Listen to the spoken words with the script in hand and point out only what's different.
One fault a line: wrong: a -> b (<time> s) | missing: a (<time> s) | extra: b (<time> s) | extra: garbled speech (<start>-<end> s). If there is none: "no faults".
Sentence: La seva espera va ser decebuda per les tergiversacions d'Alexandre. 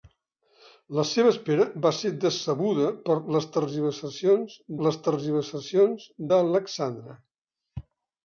extra: les tergiversacions (4.9 s)